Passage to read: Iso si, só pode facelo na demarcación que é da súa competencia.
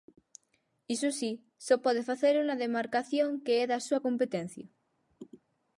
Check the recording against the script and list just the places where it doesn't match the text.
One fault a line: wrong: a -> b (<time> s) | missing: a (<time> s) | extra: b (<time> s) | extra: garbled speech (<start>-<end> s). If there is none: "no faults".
no faults